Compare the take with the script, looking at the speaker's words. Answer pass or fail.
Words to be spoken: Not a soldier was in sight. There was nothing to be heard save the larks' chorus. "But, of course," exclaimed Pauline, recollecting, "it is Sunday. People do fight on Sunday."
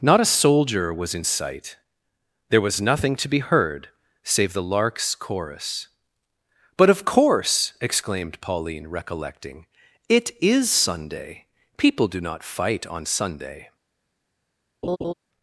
fail